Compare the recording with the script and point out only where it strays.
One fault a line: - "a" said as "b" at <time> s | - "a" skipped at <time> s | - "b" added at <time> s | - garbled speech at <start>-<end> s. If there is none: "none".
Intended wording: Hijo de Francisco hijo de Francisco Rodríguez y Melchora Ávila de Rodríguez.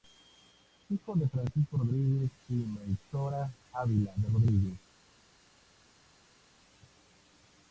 - "hijo de Francisco" skipped at 1.8 s